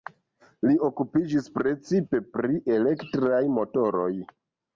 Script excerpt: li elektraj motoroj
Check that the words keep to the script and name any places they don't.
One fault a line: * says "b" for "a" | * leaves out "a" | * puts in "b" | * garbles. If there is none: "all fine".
* puts in "okupiĝis precipe pri"